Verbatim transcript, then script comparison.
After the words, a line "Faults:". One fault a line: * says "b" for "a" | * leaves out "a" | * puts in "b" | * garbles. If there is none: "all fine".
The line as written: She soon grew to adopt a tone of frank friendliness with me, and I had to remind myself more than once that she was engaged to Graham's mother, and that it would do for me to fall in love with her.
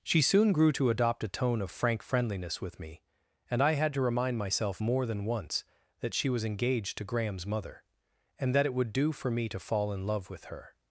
She soon grew to adopt a tone of frank friendliness with me, and I had to remind myself more than once that she was engaged to Graham's mother, and that it would do for me to fall in love with her.
Faults:
all fine